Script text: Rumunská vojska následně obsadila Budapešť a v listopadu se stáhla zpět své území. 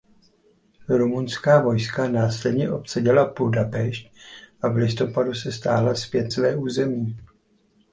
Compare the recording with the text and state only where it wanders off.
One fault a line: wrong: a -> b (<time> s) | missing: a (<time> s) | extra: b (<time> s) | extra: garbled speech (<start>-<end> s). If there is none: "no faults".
no faults